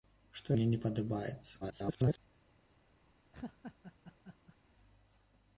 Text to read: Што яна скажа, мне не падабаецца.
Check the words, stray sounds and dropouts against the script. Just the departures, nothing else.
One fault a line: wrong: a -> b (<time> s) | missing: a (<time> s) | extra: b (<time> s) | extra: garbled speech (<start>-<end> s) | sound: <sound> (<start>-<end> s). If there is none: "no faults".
missing: яна скажа (0.6 s)
extra: garbled speech (1.6-2.2 s)
sound: laugh (3.3-4.6 s)